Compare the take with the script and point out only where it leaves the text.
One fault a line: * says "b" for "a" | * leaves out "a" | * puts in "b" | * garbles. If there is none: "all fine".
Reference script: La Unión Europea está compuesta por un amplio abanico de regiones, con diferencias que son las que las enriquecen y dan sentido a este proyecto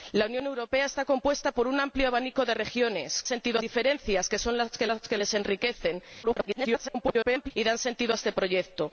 * says "sentido" for "con"
* puts in "que las"
* garbles